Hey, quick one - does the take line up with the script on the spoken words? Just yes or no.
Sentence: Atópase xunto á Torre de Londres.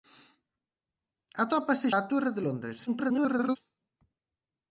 no